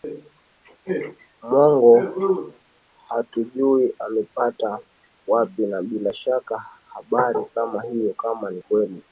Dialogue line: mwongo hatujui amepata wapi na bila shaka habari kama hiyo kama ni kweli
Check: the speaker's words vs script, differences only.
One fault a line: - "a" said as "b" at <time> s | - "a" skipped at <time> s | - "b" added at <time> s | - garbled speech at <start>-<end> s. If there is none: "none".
none